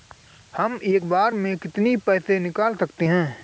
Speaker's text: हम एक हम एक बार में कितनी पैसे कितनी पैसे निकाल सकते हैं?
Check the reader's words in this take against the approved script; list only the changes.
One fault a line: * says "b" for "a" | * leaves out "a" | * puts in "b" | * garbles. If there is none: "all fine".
* leaves out "हम एक"
* leaves out "कितनी पैसे"